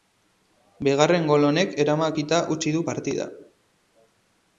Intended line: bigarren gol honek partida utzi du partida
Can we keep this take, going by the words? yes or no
no